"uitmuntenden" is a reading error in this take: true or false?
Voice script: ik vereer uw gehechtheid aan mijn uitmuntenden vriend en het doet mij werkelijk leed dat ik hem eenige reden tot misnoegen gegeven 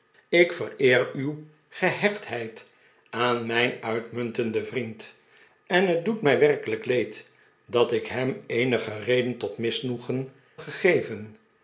false